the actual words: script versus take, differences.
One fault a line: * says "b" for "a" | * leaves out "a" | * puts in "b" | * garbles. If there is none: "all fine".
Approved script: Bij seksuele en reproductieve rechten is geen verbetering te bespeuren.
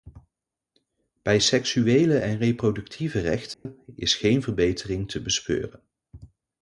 all fine